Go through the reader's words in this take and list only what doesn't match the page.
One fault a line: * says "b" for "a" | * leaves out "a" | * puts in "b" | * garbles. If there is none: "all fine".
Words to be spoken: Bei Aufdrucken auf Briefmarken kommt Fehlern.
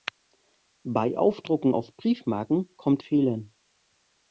all fine